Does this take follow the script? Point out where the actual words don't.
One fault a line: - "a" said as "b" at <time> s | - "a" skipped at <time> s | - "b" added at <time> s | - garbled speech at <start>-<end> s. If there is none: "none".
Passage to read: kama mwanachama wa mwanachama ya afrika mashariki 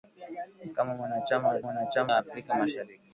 none